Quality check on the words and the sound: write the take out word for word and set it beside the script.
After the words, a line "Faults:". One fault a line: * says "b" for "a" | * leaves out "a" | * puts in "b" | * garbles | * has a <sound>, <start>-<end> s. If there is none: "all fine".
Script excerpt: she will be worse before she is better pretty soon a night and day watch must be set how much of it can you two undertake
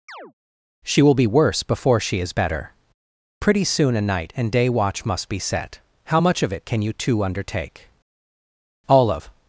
she will be worse before she is better pretty soon a night and day watch must be set how much of it can you two undertake all of
Faults:
* has a chirp, 0.1-0.3 s
* puts in "all of"